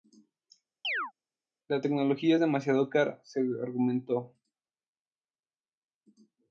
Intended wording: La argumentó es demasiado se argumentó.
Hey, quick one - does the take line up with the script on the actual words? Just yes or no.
no